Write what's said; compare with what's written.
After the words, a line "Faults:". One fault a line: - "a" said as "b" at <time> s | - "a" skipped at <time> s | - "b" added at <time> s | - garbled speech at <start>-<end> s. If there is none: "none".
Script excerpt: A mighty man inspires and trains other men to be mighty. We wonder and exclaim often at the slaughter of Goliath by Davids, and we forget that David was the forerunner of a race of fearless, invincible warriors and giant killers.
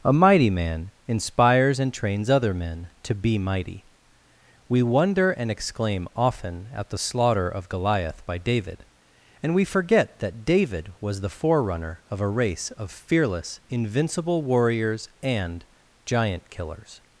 A mighty man inspires and trains other men to be mighty. We wonder and exclaim often at the slaughter of Goliath by David, and we forget that David was the forerunner of a race of fearless, invincible warriors and giant killers.
Faults:
- "Davids" said as "David" at 8.4 s